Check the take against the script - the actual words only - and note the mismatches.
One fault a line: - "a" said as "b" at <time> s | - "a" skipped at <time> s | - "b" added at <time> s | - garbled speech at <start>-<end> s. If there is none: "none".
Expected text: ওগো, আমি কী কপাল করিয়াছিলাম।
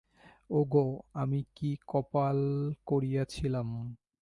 none